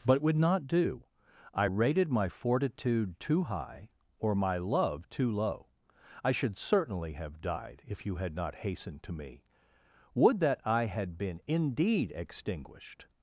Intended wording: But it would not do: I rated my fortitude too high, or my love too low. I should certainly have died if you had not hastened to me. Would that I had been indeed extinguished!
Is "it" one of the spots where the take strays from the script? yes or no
yes